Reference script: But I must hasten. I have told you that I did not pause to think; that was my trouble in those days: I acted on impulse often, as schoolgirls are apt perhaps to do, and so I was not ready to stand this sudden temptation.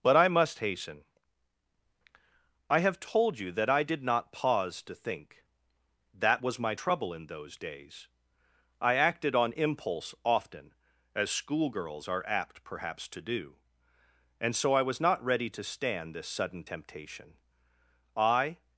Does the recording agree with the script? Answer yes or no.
no